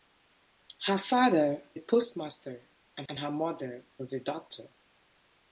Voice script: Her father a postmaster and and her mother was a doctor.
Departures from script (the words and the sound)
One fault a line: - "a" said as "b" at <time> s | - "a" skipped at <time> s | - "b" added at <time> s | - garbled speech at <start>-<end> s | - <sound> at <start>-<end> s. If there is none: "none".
none